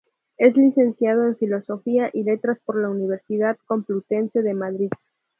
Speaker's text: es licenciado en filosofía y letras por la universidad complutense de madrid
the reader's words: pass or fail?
pass